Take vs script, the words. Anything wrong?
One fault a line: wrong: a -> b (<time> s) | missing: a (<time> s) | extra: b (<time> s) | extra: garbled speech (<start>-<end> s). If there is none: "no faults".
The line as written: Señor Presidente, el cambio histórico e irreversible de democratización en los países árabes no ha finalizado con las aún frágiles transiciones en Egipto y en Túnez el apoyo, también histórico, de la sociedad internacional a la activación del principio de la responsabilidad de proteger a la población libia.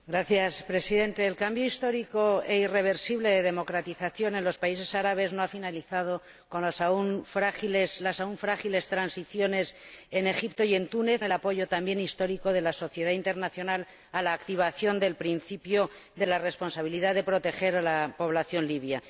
no faults